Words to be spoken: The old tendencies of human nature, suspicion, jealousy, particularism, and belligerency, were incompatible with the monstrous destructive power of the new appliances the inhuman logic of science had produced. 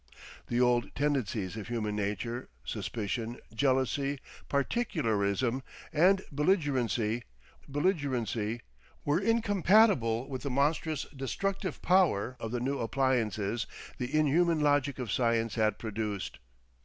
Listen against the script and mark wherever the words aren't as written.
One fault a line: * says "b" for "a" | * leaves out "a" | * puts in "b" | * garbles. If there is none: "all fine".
* puts in "belligerency"